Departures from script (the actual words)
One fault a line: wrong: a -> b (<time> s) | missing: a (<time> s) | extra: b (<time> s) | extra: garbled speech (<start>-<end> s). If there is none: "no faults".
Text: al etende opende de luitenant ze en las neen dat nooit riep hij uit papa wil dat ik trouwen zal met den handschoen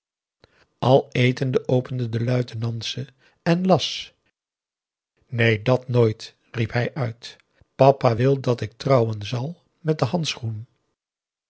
no faults